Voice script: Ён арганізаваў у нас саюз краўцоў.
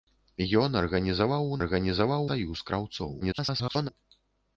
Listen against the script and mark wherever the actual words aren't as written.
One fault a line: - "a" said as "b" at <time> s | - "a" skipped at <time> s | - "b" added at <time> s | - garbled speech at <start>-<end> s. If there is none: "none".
- "нас" said as "арганізаваў" at 1.6 s
- garbled speech at 3.2-3.9 s